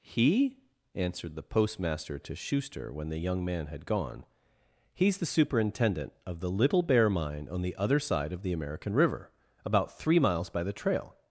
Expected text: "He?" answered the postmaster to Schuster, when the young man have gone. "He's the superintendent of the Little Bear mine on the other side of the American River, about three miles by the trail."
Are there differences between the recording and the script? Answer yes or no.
yes